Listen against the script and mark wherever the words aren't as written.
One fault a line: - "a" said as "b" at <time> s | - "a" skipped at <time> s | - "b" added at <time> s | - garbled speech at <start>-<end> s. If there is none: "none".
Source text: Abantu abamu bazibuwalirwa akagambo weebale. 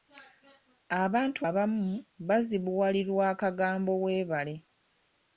none